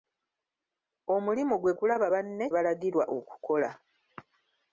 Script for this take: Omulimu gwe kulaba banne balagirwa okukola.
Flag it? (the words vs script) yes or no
no